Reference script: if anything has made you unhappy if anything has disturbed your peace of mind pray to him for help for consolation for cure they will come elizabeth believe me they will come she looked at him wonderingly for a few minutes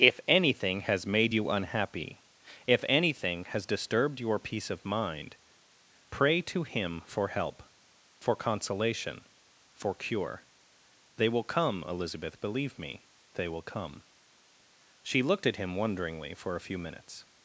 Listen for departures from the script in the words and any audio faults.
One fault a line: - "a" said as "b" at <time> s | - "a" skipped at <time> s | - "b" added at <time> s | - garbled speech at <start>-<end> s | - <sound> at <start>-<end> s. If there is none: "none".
none